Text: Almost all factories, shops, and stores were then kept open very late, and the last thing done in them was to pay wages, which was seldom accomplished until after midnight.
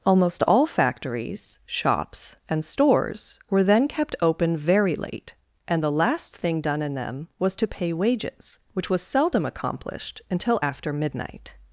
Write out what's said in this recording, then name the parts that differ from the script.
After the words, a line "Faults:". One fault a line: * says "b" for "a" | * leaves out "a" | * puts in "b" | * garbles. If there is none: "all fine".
Almost all factories, shops, and stores were then kept open very late, and the last thing done in them was to pay wages, which was seldom accomplished until after midnight.
Faults:
all fine